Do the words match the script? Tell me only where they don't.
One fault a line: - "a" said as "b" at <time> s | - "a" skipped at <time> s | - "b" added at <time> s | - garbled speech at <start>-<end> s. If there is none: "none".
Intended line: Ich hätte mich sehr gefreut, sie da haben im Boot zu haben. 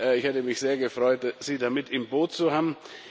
- "haben" said as "mit" at 1.7 s